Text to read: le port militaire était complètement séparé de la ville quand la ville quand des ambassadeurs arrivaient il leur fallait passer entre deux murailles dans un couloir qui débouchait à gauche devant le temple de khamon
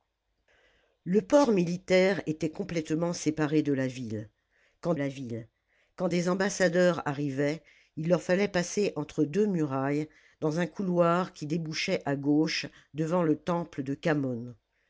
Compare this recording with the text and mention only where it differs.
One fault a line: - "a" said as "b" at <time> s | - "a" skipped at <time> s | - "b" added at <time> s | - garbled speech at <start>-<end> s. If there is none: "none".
none